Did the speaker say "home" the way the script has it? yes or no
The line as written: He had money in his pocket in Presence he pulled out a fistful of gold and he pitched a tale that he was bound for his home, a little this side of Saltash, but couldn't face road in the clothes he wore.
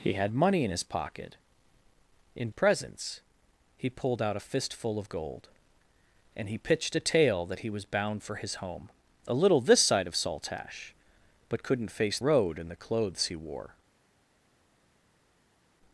yes